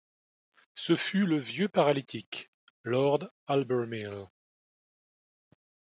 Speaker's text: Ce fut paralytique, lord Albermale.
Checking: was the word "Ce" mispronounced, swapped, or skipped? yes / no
no